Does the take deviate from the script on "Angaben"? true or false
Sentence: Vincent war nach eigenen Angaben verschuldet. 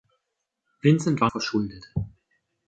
true